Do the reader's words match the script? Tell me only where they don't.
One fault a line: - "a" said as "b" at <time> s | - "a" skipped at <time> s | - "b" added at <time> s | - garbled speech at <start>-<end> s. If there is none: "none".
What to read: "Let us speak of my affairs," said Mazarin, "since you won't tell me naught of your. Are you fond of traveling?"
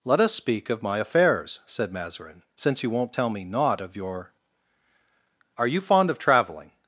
none